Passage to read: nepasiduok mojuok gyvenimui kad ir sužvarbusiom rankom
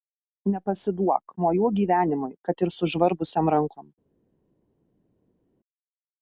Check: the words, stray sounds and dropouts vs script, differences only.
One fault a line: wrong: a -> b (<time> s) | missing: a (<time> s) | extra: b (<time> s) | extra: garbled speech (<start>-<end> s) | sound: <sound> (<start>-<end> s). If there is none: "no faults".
no faults